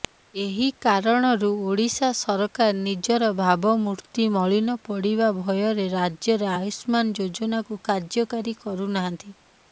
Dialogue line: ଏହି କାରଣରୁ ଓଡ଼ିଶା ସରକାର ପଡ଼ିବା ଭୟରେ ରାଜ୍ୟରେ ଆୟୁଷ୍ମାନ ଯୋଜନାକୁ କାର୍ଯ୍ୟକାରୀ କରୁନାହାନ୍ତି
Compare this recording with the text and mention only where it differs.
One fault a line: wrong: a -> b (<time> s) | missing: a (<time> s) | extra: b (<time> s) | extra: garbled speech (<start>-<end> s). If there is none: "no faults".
extra: ନିଜର ଭାବମୂର୍ତ୍ତି ମଳିନ (2.8 s)